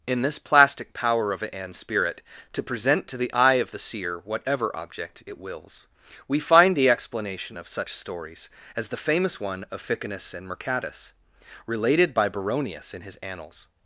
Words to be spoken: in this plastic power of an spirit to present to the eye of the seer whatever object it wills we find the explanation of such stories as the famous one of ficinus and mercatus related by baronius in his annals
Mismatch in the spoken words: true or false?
false